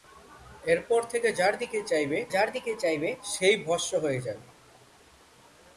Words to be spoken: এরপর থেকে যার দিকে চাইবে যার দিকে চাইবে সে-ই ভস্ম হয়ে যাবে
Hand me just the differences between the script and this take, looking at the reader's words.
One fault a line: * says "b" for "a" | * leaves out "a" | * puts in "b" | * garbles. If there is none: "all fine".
all fine